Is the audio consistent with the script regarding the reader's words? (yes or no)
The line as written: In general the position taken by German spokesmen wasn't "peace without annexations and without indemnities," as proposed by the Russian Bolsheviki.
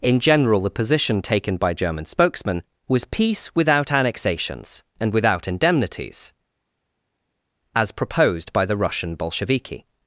no